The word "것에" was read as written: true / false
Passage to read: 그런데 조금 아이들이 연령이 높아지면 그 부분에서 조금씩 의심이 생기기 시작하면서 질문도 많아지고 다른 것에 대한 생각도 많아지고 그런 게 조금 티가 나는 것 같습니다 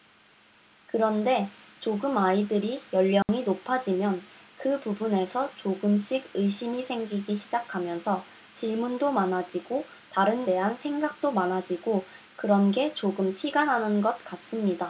false